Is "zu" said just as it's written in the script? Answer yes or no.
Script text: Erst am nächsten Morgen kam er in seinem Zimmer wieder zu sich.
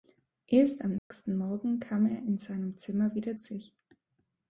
no